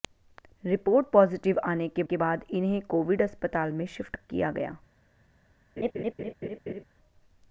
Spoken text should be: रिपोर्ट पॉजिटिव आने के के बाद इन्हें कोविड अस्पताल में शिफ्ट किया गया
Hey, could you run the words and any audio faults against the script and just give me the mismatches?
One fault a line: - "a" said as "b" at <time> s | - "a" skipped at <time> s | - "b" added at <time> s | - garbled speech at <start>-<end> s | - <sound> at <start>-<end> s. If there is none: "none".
- laugh at 5.8-6.8 s